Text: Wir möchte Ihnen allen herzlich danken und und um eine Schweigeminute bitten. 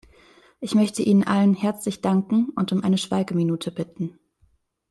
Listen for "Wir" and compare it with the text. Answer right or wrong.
wrong